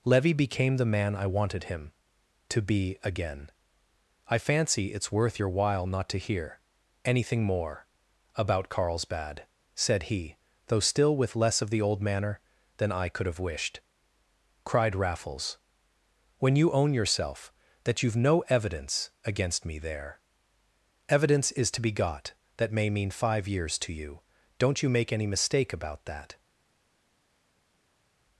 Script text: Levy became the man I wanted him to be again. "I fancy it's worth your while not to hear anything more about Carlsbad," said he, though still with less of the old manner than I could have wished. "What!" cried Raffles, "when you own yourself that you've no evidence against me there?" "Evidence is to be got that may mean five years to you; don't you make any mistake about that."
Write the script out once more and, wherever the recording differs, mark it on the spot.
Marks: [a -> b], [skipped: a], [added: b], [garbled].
Levy became the man I wanted him to be again. "I fancy it's worth your while not to hear anything more about Carlsbad," said he, though still with less of the old manner than I could have wished. [skipped: "What!"] cried Raffles, "when you own yourself that you've no evidence against me there?" "Evidence is to be got that may mean five years to you; don't you make any mistake about that."